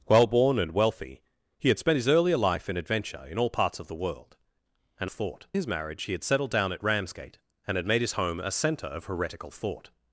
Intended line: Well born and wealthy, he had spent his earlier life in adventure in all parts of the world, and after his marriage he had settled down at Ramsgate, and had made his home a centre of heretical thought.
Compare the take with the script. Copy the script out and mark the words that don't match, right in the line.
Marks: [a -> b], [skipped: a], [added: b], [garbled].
Well born and wealthy, he had spent his earlier life in adventure in all parts of the world, and [after -> thought] his marriage he had settled down at Ramsgate, and had made his home a centre of heretical thought.